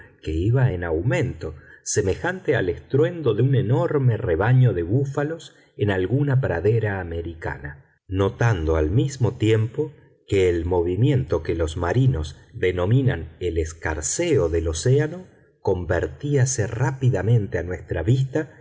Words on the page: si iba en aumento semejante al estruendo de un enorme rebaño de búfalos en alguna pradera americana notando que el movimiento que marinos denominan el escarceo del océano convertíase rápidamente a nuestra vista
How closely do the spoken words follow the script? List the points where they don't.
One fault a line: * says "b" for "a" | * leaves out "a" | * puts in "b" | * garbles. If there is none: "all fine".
* says "que" for "si"
* puts in "al mismo tiempo"
* puts in "los"